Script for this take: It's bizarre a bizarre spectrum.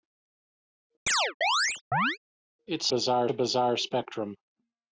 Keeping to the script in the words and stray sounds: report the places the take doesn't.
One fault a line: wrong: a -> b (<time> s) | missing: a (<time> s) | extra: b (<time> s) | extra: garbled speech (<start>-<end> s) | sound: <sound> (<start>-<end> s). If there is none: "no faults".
sound: chirp (1.1-2.2 s)